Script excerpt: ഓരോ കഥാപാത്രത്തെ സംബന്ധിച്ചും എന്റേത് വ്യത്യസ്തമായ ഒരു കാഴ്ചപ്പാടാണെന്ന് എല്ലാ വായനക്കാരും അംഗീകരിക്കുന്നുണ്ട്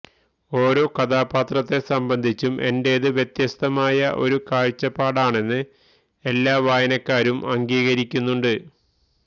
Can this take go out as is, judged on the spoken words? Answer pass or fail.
pass